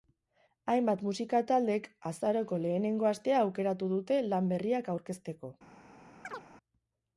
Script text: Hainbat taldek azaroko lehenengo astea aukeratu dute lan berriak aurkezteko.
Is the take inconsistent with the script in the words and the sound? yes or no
yes